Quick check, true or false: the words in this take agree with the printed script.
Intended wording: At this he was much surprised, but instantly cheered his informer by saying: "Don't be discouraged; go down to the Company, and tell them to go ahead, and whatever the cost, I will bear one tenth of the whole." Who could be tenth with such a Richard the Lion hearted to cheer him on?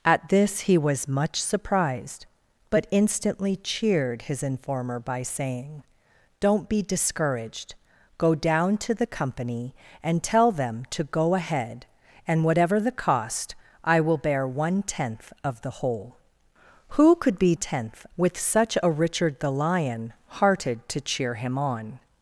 true